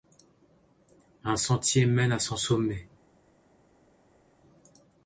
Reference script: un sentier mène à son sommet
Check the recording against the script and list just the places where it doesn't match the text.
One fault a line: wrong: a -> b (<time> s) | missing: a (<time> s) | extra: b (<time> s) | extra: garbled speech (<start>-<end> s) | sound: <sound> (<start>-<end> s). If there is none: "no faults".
no faults